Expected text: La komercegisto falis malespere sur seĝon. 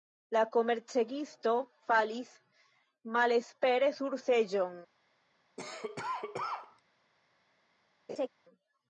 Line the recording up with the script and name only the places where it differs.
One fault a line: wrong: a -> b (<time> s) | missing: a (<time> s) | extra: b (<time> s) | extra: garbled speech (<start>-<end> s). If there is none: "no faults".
no faults